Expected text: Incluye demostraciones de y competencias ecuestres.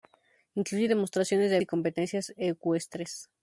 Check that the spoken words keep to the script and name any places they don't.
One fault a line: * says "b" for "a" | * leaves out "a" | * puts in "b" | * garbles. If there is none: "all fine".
all fine